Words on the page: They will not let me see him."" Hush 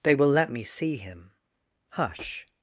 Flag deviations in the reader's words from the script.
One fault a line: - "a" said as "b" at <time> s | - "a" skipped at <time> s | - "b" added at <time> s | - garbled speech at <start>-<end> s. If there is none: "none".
- "not" skipped at 0.3 s